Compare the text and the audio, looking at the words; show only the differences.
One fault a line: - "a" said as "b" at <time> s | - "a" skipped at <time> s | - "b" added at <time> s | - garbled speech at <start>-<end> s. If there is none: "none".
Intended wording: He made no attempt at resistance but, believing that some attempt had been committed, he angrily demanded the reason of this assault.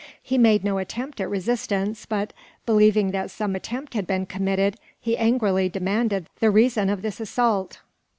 none